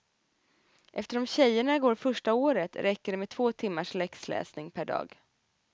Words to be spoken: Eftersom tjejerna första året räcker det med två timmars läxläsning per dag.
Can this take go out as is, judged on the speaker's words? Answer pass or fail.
fail